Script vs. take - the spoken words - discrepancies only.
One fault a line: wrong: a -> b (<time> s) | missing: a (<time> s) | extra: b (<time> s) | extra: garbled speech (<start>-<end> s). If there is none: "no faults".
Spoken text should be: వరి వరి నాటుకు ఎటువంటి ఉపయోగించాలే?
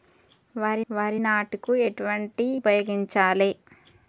no faults